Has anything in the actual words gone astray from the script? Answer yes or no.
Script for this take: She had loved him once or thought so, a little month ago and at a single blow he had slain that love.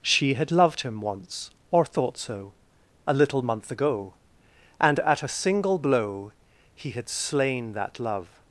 no